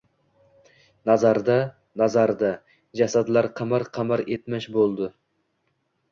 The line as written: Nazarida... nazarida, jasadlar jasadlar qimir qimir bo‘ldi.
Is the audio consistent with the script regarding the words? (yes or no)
no